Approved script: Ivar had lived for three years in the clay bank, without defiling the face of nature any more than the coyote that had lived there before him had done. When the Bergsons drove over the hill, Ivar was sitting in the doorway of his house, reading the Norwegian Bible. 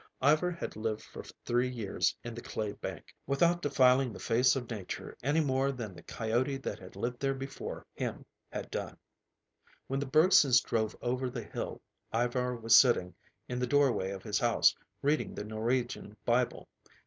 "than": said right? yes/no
yes